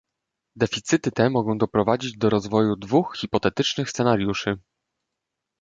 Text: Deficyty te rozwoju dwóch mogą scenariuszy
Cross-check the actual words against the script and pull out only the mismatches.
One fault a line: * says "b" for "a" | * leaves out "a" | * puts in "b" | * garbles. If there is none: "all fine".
* puts in "mogą doprowadzić do"
* says "hipotetycznych" for "mogą"